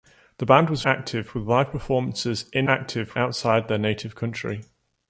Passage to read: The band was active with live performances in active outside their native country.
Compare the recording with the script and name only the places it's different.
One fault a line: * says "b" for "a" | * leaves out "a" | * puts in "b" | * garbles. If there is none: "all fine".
all fine